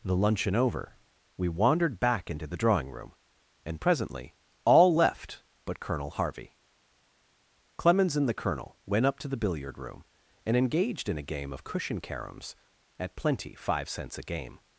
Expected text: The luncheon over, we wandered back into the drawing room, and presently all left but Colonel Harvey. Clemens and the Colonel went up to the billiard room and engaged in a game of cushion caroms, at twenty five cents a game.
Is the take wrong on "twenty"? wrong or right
wrong